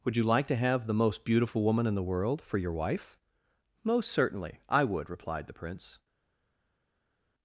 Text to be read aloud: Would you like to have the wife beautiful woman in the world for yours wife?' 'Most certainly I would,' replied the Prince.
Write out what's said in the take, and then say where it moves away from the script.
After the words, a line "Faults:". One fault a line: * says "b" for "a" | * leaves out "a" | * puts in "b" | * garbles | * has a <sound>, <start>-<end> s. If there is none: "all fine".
Would you like to have the most beautiful woman in the world for your wife?' 'Most certainly I would,' replied the Prince.
Faults:
* says "most" for "wife"
* says "your" for "yours"